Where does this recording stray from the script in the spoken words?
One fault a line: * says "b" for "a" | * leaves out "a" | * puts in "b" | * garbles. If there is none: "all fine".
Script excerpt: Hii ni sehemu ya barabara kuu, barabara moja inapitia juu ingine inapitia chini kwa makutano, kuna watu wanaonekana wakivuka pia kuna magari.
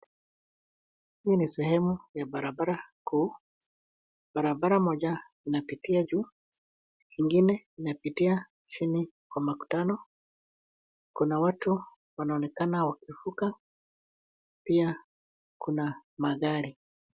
all fine